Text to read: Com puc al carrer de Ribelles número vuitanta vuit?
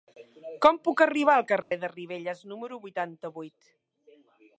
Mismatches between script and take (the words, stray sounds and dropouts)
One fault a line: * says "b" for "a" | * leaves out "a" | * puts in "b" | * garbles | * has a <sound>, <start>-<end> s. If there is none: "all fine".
* puts in "arribar"
* has a dropout, 1.6-1.7 s